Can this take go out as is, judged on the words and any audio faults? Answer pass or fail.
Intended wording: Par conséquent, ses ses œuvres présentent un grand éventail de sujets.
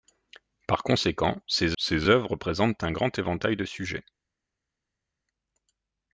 pass